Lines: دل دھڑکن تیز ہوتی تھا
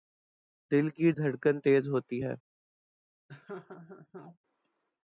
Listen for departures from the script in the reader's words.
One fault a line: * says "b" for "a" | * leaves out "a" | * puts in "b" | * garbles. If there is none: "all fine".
* puts in "کی"
* says "ہے" for "تھا"